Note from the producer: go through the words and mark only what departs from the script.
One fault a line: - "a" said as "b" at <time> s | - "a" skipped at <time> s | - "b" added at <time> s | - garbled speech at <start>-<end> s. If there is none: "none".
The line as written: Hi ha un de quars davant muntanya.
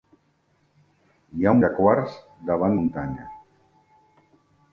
none